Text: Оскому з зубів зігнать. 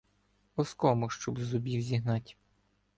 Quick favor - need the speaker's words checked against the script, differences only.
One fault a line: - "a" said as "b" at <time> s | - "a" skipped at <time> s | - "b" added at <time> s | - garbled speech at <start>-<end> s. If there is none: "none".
- "щоб" added at 1.1 s